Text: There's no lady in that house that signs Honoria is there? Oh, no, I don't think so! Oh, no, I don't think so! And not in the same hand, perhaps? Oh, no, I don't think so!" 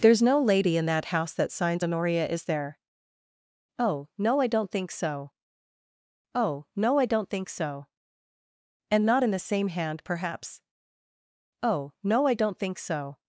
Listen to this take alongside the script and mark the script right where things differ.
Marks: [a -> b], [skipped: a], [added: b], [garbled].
There's no lady in that house that signs Honoria is there? Oh, no, I don't think so! Oh, no, I don't think so! And not in the same hand, perhaps? Oh, no, I don't think so!"